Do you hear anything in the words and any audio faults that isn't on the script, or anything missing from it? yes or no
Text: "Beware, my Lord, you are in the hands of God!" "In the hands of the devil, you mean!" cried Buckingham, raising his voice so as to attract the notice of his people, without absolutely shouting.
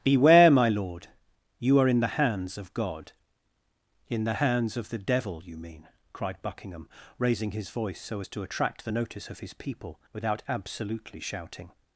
no